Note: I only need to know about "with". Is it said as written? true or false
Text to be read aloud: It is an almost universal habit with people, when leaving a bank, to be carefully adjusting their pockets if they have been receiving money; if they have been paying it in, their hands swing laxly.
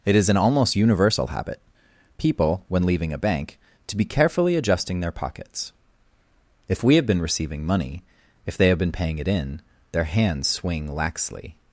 false